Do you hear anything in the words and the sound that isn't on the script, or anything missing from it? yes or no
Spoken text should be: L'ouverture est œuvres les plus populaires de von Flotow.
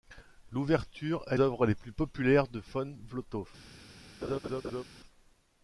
yes